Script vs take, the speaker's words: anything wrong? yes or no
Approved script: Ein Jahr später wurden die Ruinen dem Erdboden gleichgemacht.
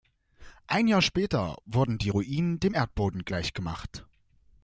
no